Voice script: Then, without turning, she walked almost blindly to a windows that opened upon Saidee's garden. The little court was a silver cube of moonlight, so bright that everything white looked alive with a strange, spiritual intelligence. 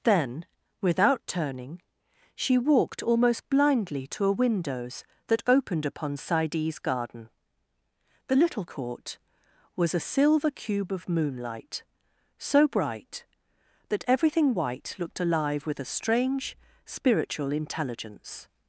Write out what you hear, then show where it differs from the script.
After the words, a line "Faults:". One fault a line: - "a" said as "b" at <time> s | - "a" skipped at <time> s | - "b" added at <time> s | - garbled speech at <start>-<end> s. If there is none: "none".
Then, without turning, she walked almost blindly to a windows that opened upon Saidee's garden. The little court was a silver cube of moonlight, so bright that everything white looked alive with a strange, spiritual intelligence.
Faults:
none